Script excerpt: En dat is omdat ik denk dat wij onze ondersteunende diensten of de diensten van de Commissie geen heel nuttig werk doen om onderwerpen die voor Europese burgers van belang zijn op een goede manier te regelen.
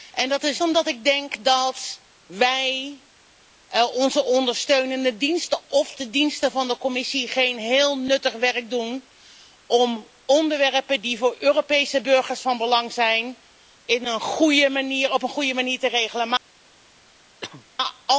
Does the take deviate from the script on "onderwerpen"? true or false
false